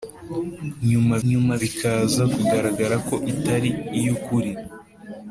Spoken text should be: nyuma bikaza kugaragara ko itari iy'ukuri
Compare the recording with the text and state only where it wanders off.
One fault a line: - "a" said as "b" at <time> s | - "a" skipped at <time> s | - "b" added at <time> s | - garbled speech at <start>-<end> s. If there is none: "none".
- "nyuma" added at 1.3 s